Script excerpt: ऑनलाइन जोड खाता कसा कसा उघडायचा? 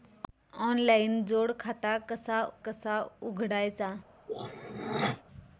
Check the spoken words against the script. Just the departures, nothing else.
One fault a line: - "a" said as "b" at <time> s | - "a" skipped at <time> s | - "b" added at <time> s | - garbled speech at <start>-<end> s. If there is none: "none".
none